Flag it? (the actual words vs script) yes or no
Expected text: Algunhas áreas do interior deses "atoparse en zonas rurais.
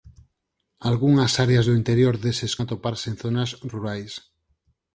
no